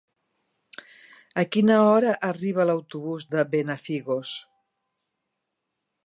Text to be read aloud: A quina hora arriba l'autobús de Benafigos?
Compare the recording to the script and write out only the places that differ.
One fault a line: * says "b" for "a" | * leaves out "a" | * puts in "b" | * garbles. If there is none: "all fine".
all fine